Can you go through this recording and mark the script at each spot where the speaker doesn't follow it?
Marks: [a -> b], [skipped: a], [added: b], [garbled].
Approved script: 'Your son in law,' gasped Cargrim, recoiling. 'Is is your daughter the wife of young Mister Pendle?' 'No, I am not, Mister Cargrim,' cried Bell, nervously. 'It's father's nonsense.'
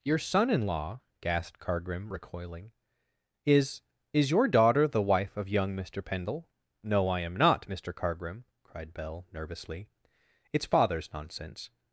'Your son in law,' gasped Cargrim, recoiling. 'Is is your daughter the wife of young Mister Pendle?' 'No, I am not, Mister Cargrim,' cried Bell, nervously. 'It's father's nonsense.'